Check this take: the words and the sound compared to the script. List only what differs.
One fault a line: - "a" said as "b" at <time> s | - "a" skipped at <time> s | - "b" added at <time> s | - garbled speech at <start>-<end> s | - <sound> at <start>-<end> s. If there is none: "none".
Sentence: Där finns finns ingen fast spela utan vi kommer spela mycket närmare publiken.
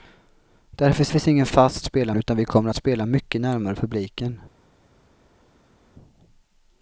none